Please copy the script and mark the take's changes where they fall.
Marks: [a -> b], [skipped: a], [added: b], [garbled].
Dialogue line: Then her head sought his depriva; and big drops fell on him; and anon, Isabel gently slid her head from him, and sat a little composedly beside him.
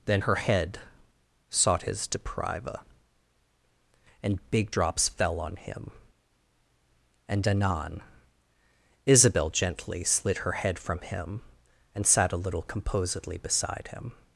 Then her head sought his depriva; and big drops fell on him; and anon, Isabel gently slid her head from him, and sat a little composedly beside him.